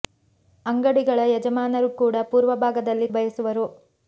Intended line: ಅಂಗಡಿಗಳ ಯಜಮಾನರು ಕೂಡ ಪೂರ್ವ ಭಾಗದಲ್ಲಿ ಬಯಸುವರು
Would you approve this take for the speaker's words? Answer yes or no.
yes